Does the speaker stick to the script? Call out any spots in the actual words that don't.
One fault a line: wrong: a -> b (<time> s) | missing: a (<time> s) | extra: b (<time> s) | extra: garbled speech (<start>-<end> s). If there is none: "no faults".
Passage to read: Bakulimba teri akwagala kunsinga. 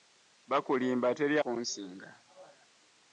missing: akwagala (1.4 s)